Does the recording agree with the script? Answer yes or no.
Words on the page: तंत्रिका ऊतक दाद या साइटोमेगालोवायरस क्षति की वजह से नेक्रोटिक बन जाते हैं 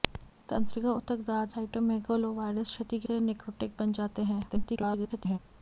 no